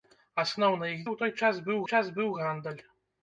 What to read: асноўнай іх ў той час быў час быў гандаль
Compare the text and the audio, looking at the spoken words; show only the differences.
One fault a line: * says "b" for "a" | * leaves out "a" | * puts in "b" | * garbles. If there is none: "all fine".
all fine